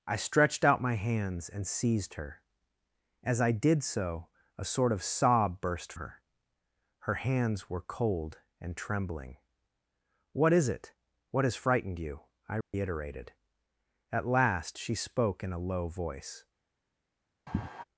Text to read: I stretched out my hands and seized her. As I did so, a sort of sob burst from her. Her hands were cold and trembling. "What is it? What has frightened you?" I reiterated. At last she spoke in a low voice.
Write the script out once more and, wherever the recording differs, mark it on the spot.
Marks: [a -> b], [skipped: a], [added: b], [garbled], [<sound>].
I stretched out my hands and seized her. As I did so, a sort of sob burst [skipped: from] her. Her hands were cold and trembling. "What is it? What has frightened you?" I reiterated. [dropout] At last she spoke in a low voice. [sigh]